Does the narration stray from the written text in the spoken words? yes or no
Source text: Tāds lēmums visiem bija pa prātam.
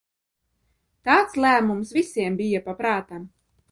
no